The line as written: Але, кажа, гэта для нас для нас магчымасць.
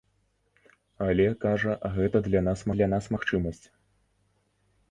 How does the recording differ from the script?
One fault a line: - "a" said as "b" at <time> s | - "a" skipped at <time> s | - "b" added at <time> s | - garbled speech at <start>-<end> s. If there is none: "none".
none